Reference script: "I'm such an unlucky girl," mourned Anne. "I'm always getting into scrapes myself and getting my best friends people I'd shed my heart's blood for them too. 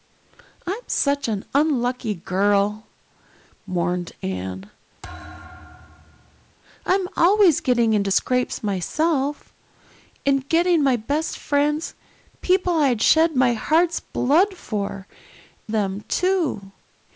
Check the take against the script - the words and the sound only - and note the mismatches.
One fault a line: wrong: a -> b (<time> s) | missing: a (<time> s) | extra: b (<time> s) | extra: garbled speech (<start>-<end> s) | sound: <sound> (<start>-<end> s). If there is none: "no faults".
sound: thud (5.0-6.5 s)